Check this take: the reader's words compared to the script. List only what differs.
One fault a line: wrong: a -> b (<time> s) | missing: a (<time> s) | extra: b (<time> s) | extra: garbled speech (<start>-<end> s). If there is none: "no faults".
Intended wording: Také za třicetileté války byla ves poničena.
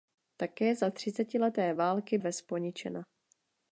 missing: byla (2.2 s)